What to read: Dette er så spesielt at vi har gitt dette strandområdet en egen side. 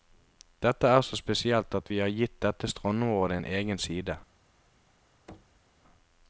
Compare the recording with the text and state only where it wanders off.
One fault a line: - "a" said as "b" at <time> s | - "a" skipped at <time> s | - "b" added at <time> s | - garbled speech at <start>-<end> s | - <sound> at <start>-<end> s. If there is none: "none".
- thud at 5.3-5.7 s